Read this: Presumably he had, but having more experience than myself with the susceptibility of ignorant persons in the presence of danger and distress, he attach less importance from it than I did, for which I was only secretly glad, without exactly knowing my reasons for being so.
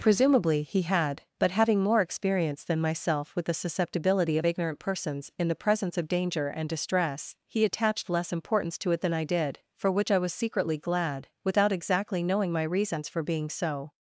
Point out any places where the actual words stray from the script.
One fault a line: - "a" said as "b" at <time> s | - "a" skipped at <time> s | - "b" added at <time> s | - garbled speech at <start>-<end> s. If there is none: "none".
- "attach" said as "attached" at 7.6 s
- "from" said as "to" at 8.8 s
- "only" skipped at 10.3 s